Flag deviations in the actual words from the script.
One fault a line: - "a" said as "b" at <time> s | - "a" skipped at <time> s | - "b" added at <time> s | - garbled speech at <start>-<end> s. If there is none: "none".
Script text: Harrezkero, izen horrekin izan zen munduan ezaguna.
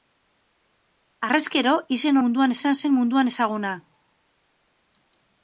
- "horrekin" said as "munduan" at 2.2 s